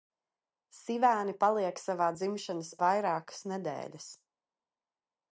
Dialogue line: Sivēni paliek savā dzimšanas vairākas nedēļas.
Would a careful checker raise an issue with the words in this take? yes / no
no